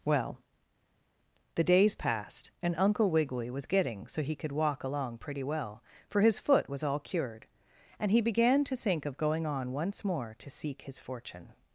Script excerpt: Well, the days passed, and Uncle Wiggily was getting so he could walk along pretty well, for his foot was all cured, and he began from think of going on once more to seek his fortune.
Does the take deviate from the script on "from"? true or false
true